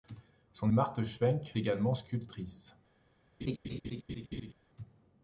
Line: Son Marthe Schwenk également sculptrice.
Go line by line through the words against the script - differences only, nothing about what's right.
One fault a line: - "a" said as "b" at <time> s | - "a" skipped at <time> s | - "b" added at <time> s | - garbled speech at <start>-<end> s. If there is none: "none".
none